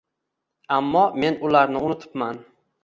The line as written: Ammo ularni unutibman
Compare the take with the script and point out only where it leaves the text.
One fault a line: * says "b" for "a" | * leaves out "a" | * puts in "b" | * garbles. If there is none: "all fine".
* puts in "men"